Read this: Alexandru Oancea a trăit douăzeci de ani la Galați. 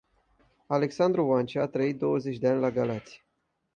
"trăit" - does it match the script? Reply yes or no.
yes